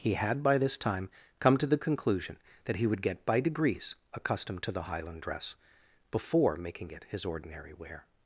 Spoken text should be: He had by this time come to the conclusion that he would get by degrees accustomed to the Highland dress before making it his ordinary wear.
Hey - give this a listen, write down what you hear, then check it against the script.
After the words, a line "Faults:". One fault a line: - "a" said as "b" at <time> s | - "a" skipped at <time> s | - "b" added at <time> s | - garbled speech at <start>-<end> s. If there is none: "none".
He had by this time come to the conclusion that he would get by degrees accustomed to the Highland dress before making it his ordinary wear.
Faults:
none